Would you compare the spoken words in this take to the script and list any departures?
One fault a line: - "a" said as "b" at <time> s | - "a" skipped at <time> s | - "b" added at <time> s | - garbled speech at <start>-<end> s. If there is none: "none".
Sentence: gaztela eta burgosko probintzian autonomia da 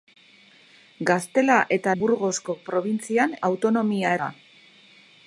none